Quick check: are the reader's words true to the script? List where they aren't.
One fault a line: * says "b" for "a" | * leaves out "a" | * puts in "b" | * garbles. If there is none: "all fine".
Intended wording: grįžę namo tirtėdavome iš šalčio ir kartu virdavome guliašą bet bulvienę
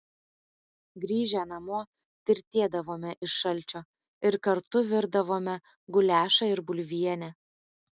* says "ir" for "bet"